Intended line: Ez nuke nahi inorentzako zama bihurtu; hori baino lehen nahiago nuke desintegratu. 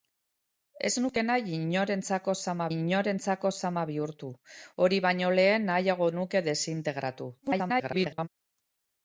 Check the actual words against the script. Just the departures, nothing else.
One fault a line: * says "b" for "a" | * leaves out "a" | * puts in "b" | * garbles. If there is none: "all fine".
* puts in "inorentzako zama"
* garbles